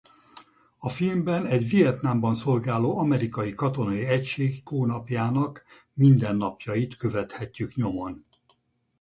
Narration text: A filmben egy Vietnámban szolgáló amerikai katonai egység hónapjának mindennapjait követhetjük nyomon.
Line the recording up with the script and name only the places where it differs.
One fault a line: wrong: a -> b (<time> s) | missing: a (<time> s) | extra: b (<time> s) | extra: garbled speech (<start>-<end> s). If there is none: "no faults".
no faults